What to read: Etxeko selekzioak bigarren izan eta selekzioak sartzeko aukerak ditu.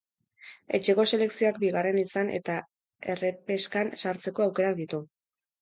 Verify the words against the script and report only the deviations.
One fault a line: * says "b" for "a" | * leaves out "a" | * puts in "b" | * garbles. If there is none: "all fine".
* says "errepeskan" for "selekzioak"